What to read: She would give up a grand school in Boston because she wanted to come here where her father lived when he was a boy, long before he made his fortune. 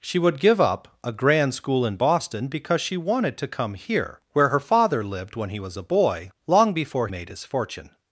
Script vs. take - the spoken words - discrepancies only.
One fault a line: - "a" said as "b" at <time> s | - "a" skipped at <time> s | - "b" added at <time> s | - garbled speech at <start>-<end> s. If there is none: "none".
- "he" skipped at 7.1 s